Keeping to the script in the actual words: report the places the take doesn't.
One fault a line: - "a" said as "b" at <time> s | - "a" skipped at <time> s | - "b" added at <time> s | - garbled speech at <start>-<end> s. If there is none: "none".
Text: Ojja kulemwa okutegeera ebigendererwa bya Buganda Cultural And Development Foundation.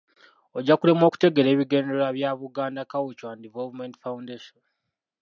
none